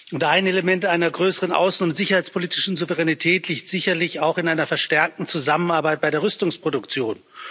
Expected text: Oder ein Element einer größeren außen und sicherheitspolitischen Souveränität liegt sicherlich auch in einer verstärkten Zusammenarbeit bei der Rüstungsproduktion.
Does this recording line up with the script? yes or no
no